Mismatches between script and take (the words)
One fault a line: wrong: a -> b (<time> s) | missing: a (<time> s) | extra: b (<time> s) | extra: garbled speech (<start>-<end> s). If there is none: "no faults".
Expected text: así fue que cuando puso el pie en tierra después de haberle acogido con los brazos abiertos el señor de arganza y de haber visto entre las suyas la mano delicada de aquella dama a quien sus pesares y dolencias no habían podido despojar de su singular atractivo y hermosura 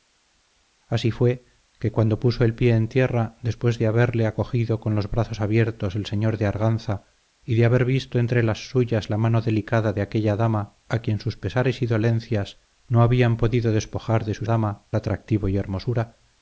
wrong: singular -> dama (14.4 s)